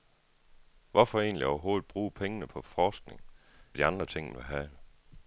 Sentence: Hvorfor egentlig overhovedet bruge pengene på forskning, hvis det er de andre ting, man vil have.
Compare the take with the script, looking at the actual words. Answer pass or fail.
fail